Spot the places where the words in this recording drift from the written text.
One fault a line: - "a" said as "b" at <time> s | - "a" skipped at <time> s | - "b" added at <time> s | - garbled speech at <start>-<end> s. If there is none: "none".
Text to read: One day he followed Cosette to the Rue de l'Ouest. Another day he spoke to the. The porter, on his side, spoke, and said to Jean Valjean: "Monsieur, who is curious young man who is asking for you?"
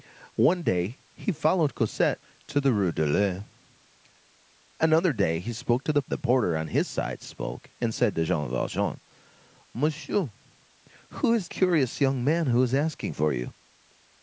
none